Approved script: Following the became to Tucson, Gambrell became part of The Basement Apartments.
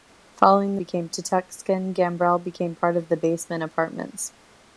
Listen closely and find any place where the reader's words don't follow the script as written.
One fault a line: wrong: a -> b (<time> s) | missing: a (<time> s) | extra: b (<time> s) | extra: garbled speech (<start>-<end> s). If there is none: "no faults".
no faults